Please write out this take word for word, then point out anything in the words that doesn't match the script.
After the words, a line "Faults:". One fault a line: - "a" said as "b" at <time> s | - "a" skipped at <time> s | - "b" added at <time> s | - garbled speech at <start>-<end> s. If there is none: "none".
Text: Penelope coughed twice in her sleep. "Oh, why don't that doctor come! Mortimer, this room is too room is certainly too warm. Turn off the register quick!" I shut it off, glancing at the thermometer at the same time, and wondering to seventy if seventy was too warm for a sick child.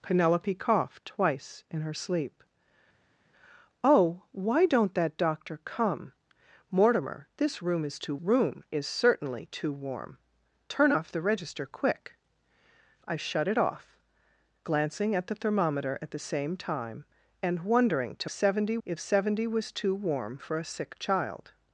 Penelope coughed twice in her sleep. "Oh, why don't that doctor come! Mortimer, this room is too room is certainly too warm. Turn off the register quick!" I shut it off, glancing at the thermometer at the same time, and wondering to seventy if seventy was too warm for a sick child.
Faults:
none